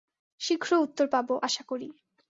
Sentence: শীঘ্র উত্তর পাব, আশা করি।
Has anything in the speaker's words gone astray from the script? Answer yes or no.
no